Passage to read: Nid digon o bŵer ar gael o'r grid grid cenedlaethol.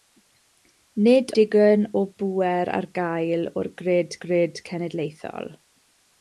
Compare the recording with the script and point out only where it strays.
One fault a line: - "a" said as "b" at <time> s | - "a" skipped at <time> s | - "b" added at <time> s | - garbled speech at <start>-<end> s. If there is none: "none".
none